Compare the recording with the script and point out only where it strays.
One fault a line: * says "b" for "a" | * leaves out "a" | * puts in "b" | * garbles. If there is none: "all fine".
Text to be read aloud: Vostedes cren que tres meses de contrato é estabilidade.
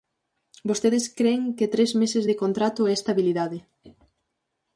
all fine